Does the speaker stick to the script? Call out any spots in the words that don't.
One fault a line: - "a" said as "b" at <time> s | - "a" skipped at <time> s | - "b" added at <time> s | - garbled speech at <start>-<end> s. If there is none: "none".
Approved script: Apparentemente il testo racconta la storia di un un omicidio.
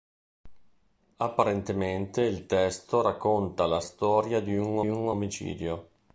none